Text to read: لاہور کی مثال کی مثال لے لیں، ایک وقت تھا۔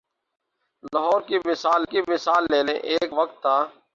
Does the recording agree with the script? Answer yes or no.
yes